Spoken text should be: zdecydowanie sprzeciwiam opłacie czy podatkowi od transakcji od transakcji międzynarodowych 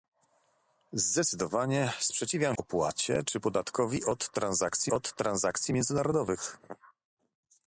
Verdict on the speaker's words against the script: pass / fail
pass